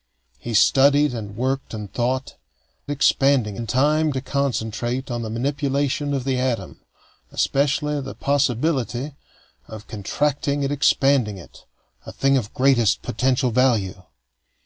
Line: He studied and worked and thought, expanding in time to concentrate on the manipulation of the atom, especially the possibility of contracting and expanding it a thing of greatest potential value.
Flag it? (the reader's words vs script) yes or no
no